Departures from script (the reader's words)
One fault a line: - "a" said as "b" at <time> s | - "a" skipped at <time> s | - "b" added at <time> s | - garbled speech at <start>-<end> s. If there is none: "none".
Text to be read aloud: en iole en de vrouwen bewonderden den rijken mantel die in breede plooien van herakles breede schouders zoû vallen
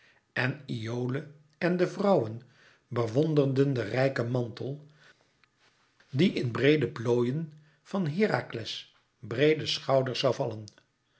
none